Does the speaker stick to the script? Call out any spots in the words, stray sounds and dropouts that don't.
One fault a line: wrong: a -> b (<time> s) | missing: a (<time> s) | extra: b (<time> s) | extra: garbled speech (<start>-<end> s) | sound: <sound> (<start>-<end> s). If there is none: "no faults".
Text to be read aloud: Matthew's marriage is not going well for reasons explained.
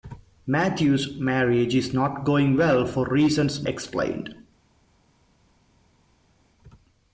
no faults